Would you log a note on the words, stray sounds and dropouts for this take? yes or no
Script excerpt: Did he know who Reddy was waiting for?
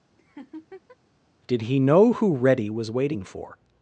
yes